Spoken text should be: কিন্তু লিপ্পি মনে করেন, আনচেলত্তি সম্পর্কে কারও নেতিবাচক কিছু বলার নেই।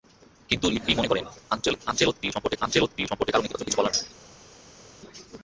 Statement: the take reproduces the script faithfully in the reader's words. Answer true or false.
false